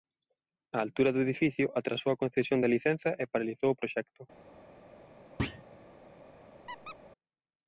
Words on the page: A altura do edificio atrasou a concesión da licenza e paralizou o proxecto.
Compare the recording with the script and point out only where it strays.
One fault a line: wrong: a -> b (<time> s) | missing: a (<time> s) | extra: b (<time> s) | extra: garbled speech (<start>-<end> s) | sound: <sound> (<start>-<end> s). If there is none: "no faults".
sound: thud (5.4-5.6 s)
sound: squeak (6.7-7.0 s)